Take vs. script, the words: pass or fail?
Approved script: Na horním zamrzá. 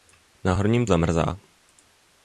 pass